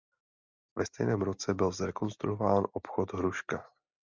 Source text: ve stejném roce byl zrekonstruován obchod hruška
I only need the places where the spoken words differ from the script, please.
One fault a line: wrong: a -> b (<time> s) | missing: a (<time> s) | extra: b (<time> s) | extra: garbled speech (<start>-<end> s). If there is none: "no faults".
no faults